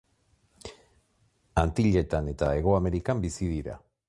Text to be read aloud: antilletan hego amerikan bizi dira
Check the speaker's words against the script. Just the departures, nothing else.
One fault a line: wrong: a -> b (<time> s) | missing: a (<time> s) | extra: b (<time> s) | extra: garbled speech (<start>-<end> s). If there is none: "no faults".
extra: eta (2.3 s)